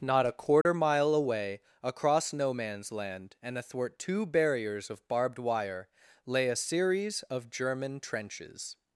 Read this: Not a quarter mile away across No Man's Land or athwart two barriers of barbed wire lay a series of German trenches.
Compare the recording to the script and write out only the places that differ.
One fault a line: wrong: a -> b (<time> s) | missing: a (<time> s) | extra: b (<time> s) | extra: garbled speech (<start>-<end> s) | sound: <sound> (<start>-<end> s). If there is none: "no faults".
sound: dropout (0.6-0.7 s)
wrong: or -> and (3.4 s)